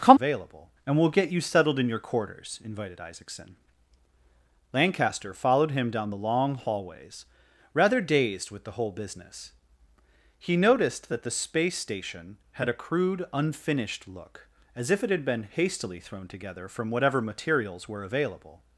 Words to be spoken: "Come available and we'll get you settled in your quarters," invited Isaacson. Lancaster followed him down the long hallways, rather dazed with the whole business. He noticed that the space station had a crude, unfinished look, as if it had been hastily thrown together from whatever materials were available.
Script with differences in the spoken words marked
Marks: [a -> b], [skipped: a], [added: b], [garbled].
"Come available and we'll get you settled in your quarters," invited Isaacson. Lancaster followed him down the long hallways, rather dazed with the whole business. He noticed that the space station had a crude, unfinished look, as if it had been hastily thrown together from whatever materials were available.